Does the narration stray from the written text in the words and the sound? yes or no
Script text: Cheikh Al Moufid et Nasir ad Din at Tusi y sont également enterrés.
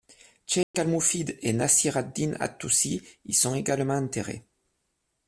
yes